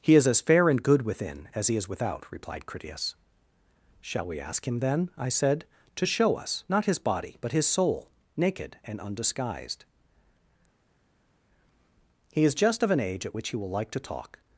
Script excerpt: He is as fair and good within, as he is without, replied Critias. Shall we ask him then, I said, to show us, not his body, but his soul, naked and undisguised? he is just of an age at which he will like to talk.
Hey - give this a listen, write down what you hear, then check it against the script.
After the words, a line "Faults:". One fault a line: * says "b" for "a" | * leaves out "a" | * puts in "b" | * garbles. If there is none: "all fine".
He is as fair and good within, as he is without, replied Critias. Shall we ask him then, I said, to show us, not his body, but his soul, naked and undisguised? he is just of an age at which he will like to talk.
Faults:
all fine